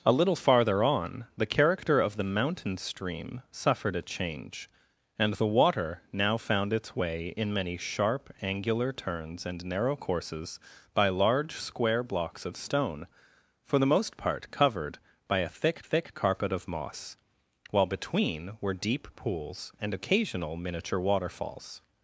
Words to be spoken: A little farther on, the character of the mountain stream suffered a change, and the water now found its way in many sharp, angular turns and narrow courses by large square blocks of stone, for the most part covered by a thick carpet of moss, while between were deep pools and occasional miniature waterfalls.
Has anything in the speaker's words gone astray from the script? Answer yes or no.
yes